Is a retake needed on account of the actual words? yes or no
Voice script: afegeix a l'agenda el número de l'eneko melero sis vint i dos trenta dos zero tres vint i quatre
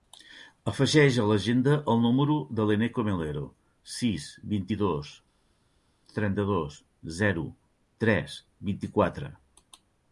no